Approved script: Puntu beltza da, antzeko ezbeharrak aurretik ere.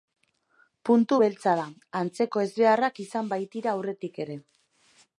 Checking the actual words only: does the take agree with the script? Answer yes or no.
no